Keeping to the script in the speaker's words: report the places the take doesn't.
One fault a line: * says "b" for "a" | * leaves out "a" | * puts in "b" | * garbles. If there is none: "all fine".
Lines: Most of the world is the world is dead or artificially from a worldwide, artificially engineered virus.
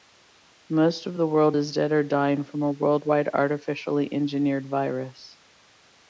* leaves out "the world is"
* says "dying" for "artificially"